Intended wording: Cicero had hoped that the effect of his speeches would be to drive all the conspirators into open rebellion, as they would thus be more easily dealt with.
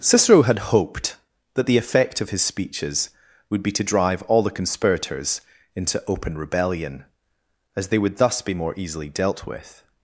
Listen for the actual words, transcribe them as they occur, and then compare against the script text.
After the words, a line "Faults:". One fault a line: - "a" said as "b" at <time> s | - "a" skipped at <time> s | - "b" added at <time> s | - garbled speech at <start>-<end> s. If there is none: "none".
Cicero had hoped that the effect of his speeches would be to drive all the conspirators into open rebellion, as they would thus be more easily dealt with.
Faults:
none